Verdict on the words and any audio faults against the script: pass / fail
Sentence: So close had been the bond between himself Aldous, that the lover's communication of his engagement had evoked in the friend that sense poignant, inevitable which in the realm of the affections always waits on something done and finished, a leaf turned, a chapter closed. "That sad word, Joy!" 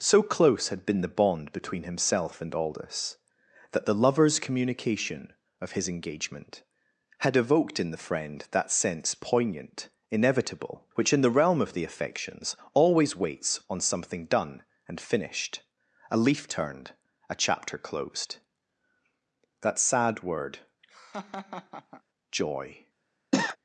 fail